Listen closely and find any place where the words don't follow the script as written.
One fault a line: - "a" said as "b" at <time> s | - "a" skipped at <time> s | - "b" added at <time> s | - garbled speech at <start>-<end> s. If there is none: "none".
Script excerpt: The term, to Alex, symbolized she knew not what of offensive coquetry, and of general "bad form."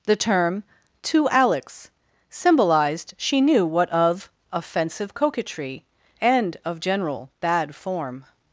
- "not" skipped at 3.6 s